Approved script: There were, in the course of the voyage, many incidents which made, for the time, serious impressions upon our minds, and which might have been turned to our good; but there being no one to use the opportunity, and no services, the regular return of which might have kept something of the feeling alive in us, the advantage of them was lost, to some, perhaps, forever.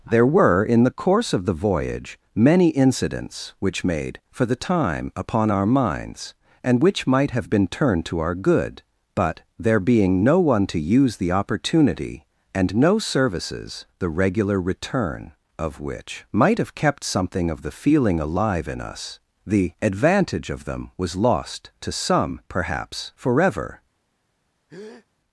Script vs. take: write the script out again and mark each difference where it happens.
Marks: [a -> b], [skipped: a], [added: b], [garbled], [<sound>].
There were, in the course of the voyage, many incidents which made, for the time, [skipped: serious impressions] upon our minds, and which might have been turned to our good; but there being no one to use the opportunity, and no services, the regular return of which might have kept something of the feeling alive in us, the advantage of them was lost, to some, perhaps, forever. [breath]